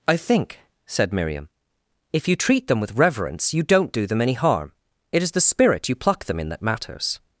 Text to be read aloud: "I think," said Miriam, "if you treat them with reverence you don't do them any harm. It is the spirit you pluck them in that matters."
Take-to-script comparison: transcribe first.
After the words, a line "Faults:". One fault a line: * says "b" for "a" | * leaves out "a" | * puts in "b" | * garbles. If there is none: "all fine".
"I think," said Miriam, "if you treat them with reverence you don't do them any harm. It is the spirit you pluck them in that matters."
Faults:
all fine